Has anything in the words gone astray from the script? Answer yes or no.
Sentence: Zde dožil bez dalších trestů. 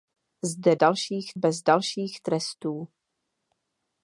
yes